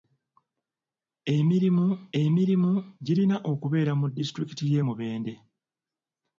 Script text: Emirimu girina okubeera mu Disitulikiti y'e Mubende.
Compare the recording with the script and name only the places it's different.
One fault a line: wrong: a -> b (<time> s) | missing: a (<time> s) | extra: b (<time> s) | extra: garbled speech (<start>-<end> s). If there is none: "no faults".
extra: emirimu (2.2 s)